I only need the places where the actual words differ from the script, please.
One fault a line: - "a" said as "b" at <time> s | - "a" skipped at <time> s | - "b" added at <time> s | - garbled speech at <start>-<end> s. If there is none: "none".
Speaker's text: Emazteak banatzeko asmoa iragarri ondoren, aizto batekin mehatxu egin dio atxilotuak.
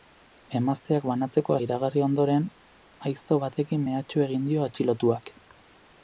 - "asmoa" skipped at 1.6 s